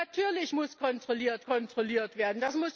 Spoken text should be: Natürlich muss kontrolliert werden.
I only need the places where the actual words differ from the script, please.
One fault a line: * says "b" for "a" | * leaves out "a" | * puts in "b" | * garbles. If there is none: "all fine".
* puts in "kontrolliert"